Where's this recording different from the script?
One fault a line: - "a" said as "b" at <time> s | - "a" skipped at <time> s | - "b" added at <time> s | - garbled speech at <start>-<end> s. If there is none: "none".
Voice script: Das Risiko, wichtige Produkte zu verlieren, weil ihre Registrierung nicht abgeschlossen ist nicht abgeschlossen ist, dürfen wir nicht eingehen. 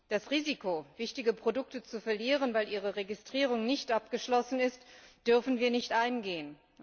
- "nicht abgeschlossen ist" skipped at 4.8 s